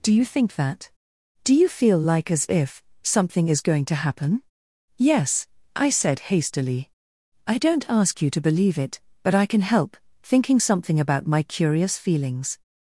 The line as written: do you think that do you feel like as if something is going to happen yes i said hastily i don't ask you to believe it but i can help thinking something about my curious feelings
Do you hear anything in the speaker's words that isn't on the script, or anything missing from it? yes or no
no